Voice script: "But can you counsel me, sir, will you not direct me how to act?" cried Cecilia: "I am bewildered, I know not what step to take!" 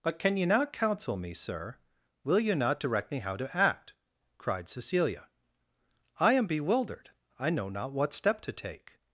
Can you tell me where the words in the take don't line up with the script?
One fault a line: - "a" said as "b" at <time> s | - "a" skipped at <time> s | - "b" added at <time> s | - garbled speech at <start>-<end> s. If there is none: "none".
- "not" added at 0.5 s